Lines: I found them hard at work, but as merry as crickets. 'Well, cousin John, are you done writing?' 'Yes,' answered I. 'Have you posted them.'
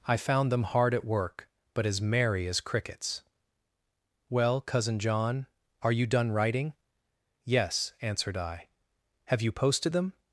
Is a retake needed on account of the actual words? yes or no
no